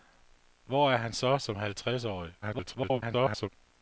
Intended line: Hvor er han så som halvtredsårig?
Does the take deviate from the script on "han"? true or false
false